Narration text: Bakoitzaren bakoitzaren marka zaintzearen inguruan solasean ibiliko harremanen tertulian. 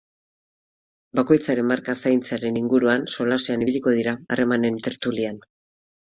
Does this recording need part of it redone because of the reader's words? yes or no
yes